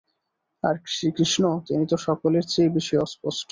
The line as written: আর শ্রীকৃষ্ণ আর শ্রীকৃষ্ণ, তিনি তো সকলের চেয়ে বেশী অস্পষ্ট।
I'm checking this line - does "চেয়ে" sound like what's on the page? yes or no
yes